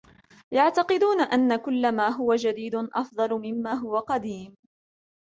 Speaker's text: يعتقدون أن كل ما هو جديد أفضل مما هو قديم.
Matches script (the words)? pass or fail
pass